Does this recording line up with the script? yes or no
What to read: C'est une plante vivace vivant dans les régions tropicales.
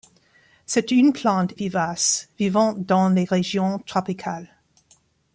yes